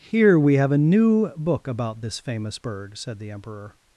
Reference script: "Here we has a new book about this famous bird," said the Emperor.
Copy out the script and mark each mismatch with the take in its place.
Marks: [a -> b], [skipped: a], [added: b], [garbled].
"Here we [has -> have] a new book about this famous bird," said the Emperor.